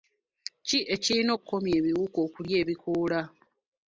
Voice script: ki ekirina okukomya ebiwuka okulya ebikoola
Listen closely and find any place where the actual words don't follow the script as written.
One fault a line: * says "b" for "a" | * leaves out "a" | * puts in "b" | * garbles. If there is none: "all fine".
all fine